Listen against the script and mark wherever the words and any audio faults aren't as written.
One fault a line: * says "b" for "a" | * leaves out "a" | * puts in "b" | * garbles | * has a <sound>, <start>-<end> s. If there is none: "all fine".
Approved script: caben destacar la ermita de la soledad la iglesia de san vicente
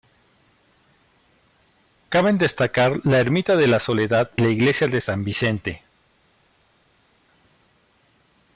all fine